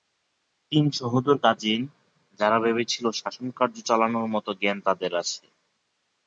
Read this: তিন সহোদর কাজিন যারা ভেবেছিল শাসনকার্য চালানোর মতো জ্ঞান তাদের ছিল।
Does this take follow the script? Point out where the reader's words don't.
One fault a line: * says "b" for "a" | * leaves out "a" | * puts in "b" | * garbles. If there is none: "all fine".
* says "আছে" for "ছিল"